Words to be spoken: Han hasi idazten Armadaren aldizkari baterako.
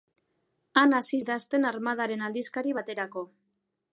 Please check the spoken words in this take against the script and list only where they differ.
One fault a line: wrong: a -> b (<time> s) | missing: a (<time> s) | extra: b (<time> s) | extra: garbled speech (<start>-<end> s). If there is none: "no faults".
no faults